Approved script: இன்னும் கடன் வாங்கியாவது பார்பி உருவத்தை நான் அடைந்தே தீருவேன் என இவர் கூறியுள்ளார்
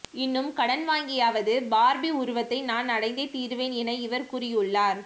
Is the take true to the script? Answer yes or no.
yes